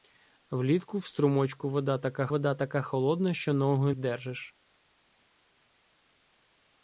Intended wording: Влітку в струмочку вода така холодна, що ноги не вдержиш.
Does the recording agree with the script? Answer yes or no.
no